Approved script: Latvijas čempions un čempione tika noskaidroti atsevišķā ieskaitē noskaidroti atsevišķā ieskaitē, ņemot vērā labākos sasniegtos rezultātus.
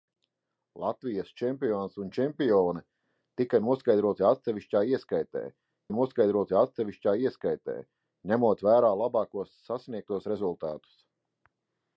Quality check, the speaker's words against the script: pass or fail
pass